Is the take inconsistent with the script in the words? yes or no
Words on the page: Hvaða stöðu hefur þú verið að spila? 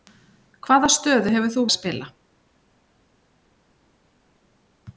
yes